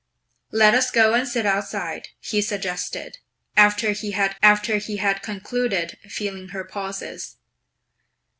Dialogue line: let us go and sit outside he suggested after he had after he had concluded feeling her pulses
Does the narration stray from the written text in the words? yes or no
no